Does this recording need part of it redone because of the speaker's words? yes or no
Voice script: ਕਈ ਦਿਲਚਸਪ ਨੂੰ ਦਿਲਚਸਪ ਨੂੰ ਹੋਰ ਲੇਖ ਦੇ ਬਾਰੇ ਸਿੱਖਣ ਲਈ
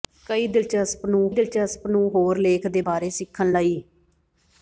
no